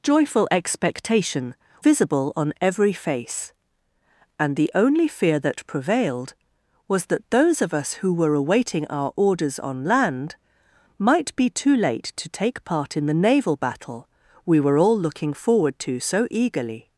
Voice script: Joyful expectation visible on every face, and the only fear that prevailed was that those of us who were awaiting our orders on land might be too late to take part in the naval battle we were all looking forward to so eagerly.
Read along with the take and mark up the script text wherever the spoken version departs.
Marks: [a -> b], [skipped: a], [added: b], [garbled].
Joyful expectation visible on every face, and the only fear that prevailed was that those of us who were awaiting our orders on land might be too late to take part in the naval battle we were all looking forward to so eagerly.